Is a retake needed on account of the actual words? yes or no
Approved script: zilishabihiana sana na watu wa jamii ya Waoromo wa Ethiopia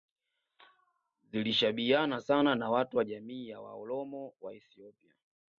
no